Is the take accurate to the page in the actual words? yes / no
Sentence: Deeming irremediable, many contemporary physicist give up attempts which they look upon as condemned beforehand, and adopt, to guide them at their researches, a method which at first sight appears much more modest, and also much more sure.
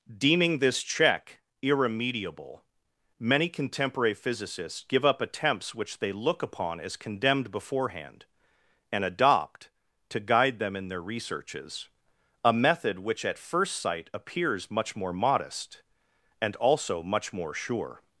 no